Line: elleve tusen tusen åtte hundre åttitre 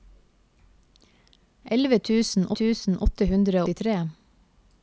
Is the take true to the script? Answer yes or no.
yes